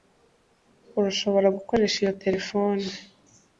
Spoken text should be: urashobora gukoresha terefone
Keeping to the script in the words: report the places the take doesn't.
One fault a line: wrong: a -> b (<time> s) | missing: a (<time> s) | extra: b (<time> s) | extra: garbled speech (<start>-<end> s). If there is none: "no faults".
extra: iyo (2.0 s)